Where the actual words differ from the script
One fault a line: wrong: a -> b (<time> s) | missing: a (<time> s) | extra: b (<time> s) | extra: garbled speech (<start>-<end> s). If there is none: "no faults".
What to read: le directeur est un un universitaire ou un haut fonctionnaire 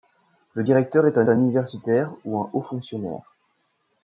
no faults